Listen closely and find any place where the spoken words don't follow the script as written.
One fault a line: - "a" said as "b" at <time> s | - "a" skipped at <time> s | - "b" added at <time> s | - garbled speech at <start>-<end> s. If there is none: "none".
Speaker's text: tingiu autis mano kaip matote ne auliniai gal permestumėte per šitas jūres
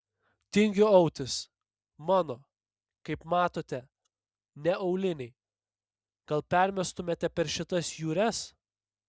none